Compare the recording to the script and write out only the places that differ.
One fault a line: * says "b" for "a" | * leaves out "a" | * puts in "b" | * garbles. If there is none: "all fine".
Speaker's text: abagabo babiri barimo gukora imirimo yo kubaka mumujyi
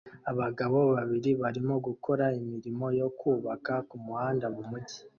* puts in "kumuhanda"